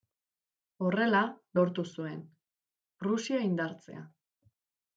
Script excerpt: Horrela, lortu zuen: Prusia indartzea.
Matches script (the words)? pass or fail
pass